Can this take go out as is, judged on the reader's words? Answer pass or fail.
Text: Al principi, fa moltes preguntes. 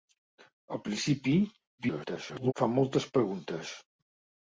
fail